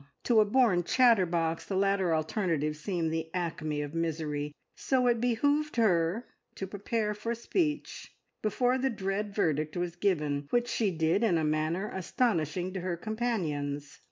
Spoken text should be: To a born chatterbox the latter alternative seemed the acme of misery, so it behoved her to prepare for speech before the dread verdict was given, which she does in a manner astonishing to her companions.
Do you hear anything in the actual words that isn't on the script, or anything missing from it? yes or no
yes